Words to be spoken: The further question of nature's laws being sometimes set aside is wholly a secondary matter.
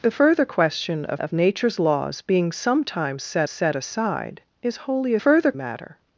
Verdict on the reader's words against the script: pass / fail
fail